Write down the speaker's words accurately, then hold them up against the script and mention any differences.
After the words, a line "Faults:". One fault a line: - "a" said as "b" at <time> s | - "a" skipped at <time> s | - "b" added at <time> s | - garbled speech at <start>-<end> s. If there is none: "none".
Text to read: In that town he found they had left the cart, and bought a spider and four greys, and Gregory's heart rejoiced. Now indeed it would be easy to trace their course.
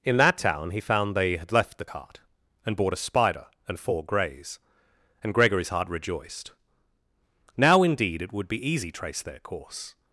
In that town he found they had left the cart, and bought a spider and four greys, and Gregory's heart rejoiced. Now indeed it would be easy trace their course.
Faults:
- "to" skipped at 8.9 s